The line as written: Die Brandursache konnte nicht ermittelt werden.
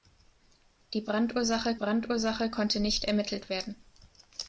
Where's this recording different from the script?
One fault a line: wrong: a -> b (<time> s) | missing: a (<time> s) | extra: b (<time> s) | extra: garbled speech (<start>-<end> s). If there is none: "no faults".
extra: Brandursache (1.7 s)